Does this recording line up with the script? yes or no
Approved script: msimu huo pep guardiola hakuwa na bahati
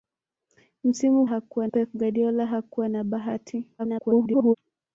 no